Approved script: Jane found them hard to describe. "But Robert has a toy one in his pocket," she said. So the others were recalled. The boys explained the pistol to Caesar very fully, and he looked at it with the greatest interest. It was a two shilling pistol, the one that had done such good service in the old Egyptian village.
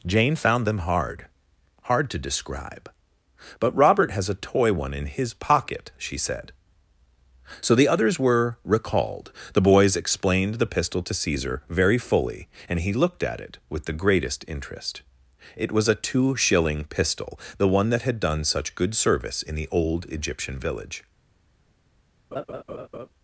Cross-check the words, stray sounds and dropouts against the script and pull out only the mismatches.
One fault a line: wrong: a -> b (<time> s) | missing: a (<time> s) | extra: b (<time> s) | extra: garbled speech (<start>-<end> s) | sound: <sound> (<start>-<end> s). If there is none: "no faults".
extra: hard (1.9 s)
sound: laugh (22.3-23.1 s)